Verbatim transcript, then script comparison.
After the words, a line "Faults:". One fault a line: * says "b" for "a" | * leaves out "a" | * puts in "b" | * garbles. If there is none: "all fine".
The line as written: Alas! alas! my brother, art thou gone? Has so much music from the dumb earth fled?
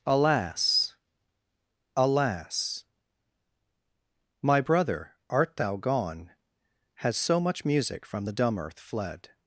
Alas! alas! my brother, art thou gone? Has so much music from the dumb earth fled?
Faults:
all fine